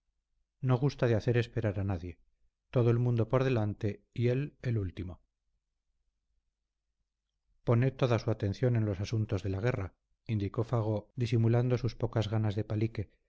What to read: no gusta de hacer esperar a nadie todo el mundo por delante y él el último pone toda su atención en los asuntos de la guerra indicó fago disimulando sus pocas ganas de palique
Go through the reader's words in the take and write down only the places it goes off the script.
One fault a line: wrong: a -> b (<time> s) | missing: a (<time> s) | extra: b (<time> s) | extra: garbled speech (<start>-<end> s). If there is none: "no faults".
no faults